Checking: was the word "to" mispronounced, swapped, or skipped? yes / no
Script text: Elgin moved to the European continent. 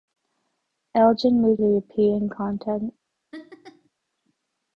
yes